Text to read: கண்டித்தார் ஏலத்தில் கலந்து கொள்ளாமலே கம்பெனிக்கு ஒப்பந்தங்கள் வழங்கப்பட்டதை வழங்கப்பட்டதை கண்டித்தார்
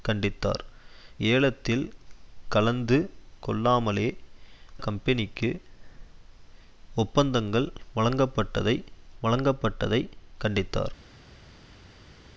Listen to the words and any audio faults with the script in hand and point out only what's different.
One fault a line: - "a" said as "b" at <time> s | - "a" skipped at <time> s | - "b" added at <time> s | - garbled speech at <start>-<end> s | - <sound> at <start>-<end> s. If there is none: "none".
none